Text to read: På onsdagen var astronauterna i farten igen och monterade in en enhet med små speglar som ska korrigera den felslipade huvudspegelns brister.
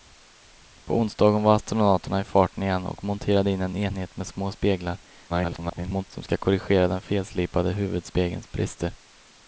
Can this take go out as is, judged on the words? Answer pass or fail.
fail